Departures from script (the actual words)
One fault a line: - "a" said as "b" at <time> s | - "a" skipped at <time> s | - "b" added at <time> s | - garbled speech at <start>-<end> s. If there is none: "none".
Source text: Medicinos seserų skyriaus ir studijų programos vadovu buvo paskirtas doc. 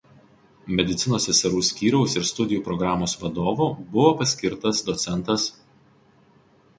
none